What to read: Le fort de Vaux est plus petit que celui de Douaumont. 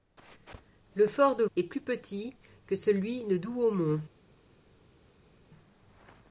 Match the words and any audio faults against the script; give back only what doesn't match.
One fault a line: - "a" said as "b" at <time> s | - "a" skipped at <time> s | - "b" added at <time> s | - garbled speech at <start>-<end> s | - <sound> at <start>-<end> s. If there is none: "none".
- "Vaux" skipped at 1.4 s